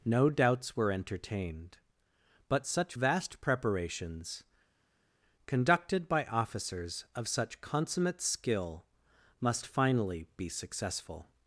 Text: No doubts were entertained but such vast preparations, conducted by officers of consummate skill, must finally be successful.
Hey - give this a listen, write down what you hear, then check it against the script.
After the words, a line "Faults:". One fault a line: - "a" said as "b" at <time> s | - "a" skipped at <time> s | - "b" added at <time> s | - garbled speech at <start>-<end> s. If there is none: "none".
No doubts were entertained but such vast preparations, conducted by officers of such consummate skill, must finally be successful.
Faults:
- "such" added at 7.3 s